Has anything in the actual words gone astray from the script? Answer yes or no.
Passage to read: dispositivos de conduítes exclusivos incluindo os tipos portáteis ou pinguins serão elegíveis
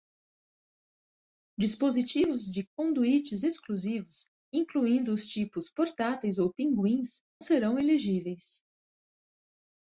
no